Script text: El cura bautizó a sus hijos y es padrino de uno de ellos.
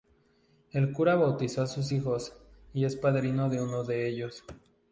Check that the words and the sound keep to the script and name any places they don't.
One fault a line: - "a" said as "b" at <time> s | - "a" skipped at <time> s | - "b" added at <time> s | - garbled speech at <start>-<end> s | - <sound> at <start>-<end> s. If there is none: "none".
none